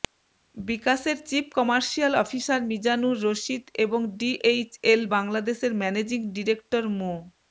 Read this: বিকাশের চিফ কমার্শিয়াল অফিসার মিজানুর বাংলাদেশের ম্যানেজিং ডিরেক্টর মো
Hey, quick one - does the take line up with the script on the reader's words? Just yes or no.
no